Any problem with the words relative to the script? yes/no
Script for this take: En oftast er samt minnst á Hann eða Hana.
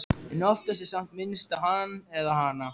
no